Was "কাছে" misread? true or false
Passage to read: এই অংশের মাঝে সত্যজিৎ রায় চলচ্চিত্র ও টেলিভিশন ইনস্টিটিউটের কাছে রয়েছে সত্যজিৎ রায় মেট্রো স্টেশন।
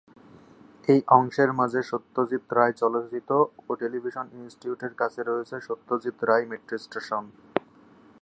false